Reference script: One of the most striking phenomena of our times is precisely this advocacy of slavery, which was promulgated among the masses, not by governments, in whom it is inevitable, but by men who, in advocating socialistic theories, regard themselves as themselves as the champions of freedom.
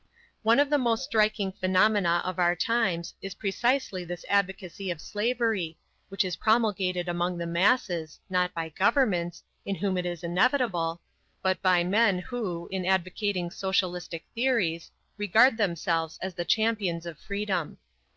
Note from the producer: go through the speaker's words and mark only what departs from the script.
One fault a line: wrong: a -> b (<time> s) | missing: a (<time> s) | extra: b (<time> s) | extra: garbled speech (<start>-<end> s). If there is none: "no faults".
wrong: was -> is (6.2 s)
missing: themselves as (16.3 s)